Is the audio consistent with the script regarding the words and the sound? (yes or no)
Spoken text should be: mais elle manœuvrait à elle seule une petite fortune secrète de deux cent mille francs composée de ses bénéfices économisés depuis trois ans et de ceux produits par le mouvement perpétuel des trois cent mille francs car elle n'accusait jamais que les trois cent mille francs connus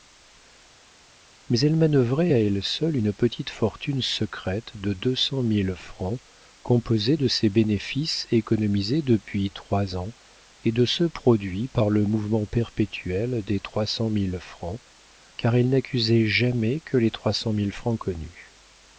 yes